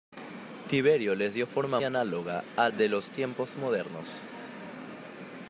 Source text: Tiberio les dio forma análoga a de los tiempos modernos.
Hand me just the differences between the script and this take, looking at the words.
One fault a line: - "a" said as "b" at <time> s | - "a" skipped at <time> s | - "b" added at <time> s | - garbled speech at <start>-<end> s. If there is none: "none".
none